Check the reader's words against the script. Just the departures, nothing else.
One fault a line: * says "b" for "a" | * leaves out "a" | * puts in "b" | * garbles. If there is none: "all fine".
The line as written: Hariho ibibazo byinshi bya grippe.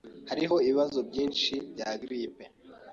all fine